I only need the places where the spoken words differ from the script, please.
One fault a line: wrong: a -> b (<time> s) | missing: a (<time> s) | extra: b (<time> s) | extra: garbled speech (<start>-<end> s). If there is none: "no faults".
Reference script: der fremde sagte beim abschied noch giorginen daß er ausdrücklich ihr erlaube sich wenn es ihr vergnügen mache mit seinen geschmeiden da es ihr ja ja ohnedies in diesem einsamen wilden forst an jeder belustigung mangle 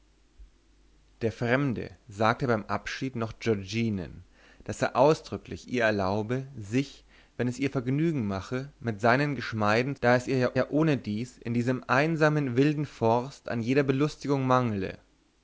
no faults